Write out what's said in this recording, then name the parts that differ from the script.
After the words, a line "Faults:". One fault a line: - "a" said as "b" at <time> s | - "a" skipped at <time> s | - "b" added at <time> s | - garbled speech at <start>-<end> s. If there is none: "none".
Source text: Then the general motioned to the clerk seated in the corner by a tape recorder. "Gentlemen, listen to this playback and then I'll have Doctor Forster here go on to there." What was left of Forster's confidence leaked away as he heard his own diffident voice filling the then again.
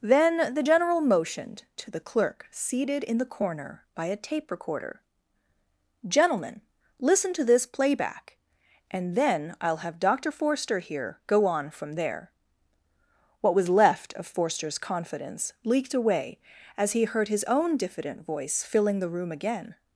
Then the general motioned to the clerk seated in the corner by a tape recorder. "Gentlemen, listen to this playback and then I'll have Doctor Forster here go on from there." What was left of Forster's confidence leaked away as he heard his own diffident voice filling the room again.
Faults:
- "to" said as "from" at 11.7 s
- "then" said as "room" at 19.1 s